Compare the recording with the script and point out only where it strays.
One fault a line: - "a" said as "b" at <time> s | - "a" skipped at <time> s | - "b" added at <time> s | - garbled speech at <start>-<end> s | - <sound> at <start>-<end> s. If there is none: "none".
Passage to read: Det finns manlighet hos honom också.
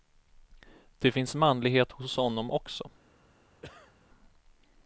- cough at 3.6-3.9 s